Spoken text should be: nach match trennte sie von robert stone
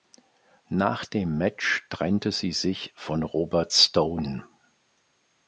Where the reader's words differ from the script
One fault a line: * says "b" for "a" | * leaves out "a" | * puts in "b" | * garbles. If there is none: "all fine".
* puts in "dem"
* puts in "sich"